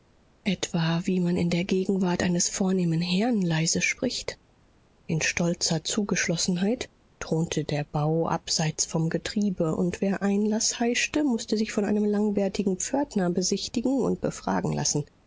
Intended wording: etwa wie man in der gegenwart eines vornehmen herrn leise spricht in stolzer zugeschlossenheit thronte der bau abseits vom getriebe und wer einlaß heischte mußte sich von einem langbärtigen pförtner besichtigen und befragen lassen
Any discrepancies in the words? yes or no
no